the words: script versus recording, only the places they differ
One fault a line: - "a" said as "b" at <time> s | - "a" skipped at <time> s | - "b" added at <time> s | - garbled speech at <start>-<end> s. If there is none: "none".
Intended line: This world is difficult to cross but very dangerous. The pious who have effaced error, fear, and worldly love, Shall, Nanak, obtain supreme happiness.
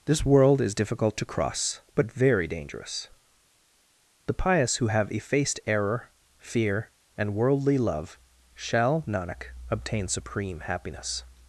none